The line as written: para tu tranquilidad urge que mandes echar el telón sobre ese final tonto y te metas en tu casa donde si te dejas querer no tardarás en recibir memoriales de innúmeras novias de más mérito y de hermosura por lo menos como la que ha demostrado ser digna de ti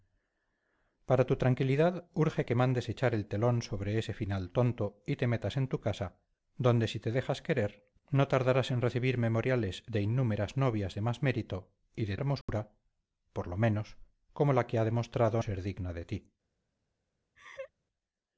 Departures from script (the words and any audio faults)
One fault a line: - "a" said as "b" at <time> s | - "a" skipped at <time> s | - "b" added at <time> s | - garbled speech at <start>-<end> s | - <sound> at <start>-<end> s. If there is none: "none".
- dropout at 12.4-12.5 s
- laugh at 17.4-17.7 s